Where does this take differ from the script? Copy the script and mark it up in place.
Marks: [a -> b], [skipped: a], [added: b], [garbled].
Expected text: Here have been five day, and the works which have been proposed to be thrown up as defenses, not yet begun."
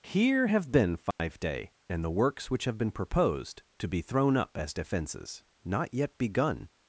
Here have been five day, and the works which have been proposed to be thrown up as defenses, not yet begun."